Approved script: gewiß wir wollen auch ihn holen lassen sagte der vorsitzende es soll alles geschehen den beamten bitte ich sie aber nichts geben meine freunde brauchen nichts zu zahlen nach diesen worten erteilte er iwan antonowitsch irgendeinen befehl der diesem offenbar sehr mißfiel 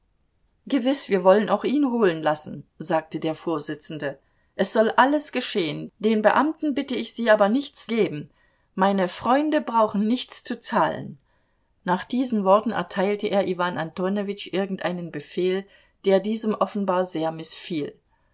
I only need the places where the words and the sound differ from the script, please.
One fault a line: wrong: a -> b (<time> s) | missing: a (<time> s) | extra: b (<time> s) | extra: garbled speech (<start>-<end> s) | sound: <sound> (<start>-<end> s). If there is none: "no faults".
no faults